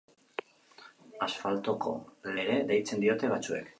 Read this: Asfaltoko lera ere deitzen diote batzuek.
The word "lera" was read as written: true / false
false